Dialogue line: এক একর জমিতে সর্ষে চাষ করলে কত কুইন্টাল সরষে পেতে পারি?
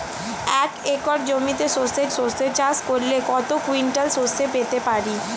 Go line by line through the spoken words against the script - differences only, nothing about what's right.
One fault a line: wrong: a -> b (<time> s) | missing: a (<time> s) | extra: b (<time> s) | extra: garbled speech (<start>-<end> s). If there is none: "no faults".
extra: সর্ষে (2.2 s)